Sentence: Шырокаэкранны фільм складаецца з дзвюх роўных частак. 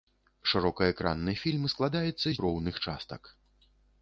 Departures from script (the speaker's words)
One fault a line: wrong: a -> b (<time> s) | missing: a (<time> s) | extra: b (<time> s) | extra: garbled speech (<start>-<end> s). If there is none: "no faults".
missing: дзвюх (2.3 s)